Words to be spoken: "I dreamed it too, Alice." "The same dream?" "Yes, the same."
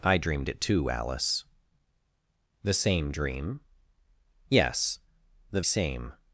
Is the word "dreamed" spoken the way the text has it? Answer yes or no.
yes